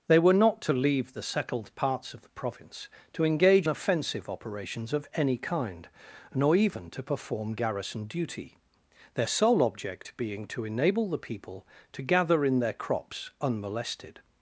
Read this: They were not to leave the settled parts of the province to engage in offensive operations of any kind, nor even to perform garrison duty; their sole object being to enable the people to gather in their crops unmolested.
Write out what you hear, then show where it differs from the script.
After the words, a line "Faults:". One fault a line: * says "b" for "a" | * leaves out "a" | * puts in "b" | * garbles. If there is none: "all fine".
They were not to leave the settled parts of the province to engage offensive operations of any kind, nor even to perform garrison duty; their sole object being to enable the people to gather in their crops unmolested.
Faults:
* leaves out "in"